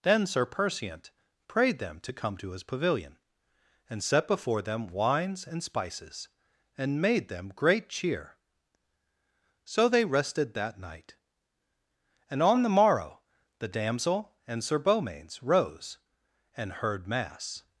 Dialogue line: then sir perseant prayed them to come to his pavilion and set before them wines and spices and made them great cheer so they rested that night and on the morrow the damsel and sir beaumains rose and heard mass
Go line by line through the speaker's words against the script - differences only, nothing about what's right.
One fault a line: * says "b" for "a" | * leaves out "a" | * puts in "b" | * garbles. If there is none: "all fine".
all fine